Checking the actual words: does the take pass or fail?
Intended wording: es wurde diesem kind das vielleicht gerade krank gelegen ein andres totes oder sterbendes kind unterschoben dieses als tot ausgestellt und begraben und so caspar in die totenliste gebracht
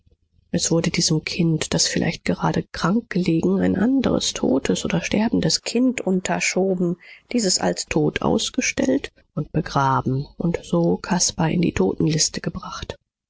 pass